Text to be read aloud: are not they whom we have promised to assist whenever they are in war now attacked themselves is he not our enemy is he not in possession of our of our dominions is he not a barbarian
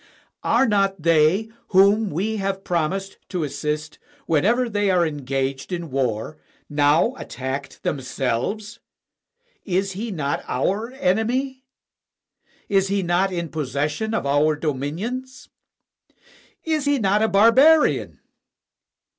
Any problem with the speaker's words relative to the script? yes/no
yes